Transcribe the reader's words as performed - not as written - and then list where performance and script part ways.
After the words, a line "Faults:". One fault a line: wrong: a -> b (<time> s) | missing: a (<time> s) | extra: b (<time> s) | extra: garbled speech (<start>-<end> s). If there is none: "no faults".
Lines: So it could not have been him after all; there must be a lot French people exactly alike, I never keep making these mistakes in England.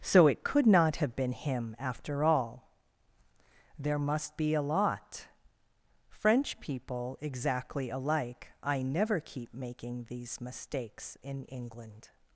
So it could not have been him after all; there must be a lot French people exactly alike, I never keep making these mistakes in England.
Faults:
no faults